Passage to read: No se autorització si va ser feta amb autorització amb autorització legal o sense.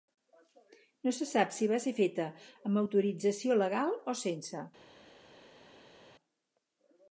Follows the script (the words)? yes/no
no